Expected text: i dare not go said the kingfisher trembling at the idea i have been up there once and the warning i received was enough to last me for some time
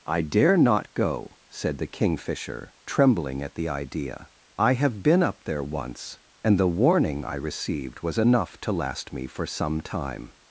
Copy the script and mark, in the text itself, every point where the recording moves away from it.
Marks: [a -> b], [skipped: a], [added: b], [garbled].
i dare not go said the kingfisher trembling at the idea i have been up there once and the warning i received was enough to last me for some time